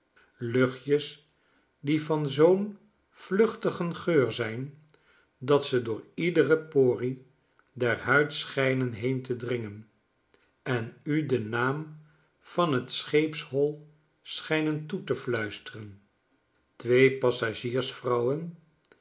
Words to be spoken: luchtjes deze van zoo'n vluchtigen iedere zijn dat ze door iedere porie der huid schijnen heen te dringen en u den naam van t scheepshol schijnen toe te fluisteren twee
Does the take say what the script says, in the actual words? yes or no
no